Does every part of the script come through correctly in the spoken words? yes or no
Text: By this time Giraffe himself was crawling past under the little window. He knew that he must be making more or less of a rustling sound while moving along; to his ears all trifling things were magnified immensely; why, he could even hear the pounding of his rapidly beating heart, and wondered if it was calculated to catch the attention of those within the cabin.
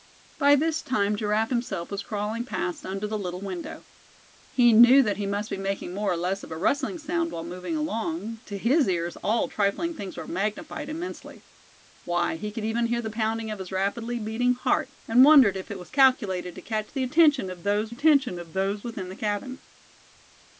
no